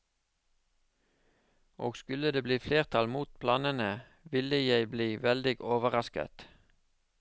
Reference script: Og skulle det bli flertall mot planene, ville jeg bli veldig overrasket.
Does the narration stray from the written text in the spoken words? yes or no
no